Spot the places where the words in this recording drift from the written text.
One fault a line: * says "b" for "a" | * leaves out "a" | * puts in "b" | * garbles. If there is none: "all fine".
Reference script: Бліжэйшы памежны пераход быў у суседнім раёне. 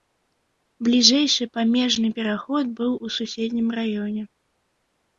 all fine